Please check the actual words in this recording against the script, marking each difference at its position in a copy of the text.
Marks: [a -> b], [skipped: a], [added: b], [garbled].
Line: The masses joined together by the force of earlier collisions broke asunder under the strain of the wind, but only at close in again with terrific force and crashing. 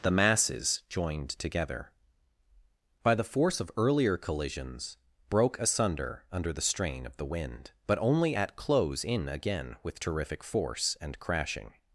The masses joined together by the force of earlier collisions broke asunder under the strain of the wind, but only at close in again with terrific force and crashing.